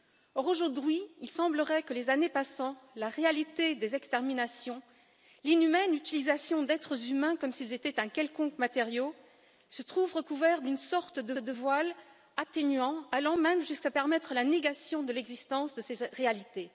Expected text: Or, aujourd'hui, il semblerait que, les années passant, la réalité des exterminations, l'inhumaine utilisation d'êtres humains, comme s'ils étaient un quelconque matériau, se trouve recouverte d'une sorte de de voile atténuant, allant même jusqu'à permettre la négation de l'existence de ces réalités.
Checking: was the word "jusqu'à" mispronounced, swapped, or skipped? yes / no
no